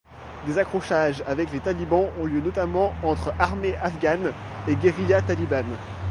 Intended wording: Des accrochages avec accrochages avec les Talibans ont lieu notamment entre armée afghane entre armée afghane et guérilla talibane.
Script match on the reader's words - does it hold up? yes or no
no